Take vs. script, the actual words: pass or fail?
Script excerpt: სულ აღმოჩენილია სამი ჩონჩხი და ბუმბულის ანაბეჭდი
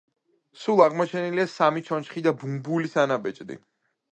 pass